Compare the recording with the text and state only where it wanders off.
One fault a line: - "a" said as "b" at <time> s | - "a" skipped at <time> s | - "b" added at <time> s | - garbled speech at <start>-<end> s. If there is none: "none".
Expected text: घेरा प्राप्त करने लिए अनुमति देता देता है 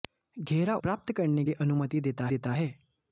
none